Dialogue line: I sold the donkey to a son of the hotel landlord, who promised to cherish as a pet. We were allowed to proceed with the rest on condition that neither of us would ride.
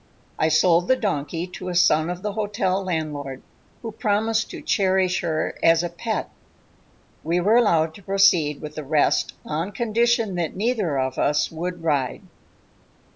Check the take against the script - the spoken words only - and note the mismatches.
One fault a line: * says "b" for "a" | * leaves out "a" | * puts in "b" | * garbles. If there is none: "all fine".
* puts in "her"